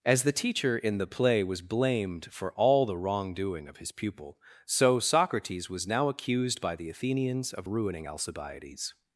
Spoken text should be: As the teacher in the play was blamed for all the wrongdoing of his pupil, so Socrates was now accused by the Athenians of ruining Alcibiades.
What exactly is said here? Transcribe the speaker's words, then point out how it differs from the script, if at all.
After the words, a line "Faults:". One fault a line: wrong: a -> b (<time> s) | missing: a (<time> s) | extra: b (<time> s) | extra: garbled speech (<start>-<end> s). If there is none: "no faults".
As the teacher in the play was blamed for all the wrongdoing of his pupil, so Socrates was now accused by the Athenians of ruining Alcibiades.
Faults:
no faults